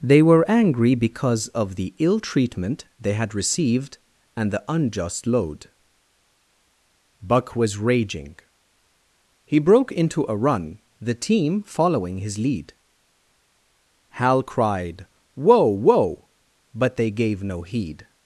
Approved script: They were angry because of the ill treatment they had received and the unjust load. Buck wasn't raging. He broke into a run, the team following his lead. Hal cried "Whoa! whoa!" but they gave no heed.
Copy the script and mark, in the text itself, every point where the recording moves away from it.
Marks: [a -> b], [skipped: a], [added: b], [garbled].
They were angry because of the ill treatment they had received and the unjust load. Buck [wasn't -> was] raging. He broke into a run, the team following his lead. Hal cried "Whoa! whoa!" but they gave no heed.